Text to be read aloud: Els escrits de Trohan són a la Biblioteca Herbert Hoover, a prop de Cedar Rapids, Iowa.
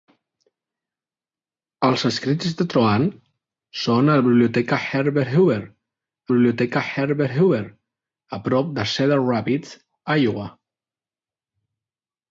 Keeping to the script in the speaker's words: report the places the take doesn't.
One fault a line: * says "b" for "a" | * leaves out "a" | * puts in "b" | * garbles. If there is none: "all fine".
* puts in "Biblioteca Herbert Hoover"